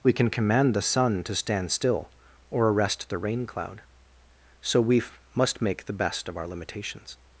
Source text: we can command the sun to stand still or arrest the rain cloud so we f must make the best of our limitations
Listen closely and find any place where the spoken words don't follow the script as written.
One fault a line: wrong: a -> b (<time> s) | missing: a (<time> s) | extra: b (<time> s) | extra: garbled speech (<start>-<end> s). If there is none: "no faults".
no faults